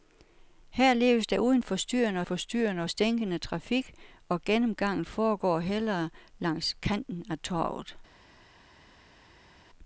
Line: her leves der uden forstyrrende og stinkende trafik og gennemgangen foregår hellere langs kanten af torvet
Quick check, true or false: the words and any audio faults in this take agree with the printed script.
false